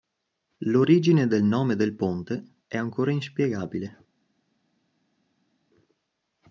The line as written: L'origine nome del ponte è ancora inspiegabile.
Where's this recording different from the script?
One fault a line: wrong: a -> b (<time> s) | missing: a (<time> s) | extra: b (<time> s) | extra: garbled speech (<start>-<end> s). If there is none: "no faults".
extra: del (1.3 s)